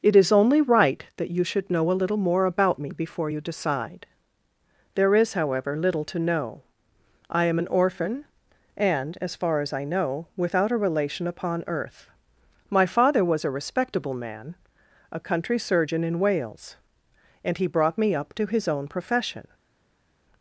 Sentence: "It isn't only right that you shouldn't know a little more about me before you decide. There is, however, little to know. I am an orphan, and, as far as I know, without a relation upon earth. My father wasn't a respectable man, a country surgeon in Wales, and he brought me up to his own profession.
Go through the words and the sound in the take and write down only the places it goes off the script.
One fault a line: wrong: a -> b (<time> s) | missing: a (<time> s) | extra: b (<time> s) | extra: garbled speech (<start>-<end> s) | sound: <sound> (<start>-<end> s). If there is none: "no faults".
wrong: isn't -> is (0.1 s)
wrong: shouldn't -> should (1.4 s)
wrong: wasn't -> was (13.2 s)